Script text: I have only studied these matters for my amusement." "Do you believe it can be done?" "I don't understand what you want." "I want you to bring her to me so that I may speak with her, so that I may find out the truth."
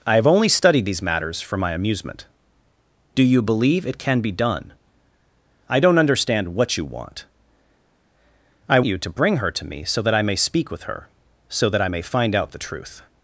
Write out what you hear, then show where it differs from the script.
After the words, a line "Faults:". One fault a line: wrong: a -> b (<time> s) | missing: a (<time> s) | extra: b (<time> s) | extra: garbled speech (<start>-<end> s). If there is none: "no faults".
I have only studied these matters for my amusement." "Do you believe it can be done?" "I don't understand what you want." "I you to bring her to me so that I may speak with her, so that I may find out the truth."
Faults:
missing: want (8.8 s)